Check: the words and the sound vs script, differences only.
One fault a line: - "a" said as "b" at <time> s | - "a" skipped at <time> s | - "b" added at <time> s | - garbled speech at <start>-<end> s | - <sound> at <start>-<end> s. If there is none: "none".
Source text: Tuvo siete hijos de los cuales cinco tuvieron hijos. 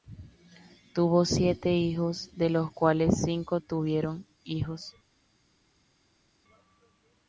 none